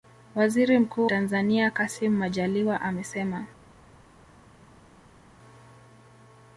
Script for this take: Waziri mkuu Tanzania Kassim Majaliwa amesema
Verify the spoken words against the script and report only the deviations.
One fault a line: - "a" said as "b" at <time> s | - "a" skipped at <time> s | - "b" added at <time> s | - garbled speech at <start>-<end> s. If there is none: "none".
none